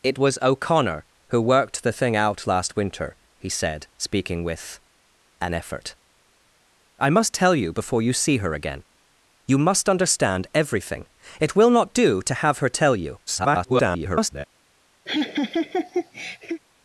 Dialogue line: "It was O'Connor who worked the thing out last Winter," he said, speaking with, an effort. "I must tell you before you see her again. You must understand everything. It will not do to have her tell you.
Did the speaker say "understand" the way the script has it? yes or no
yes